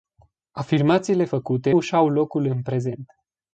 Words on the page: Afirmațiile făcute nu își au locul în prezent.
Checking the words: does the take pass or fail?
fail